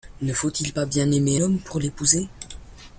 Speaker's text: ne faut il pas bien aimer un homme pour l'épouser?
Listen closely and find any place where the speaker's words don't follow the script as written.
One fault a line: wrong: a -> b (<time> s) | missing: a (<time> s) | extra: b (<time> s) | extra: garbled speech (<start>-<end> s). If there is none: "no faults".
missing: un (1.4 s)